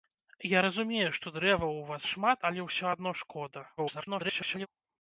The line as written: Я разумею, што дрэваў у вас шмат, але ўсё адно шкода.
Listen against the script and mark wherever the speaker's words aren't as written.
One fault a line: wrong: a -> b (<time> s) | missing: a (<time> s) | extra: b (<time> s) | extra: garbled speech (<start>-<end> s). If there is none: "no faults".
extra: garbled speech (3.8-4.7 s)